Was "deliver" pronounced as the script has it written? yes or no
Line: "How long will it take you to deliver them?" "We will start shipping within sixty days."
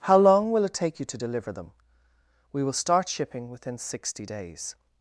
yes